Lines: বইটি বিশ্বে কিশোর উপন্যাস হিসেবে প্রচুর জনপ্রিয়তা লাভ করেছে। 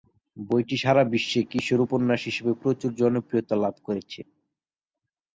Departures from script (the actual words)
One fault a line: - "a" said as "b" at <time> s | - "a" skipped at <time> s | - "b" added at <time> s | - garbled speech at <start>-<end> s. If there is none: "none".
- "সারা" added at 0.8 s